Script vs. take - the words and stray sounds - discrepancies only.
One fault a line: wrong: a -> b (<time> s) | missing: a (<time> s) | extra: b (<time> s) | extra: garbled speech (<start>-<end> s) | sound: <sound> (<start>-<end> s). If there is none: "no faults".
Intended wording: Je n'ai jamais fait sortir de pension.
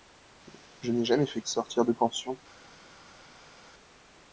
no faults